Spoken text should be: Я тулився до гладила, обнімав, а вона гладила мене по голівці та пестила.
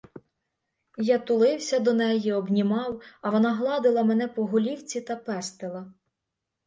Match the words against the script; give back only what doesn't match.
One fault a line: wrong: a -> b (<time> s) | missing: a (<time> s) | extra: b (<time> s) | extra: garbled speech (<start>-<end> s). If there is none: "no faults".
wrong: гладила -> неї (1.9 s)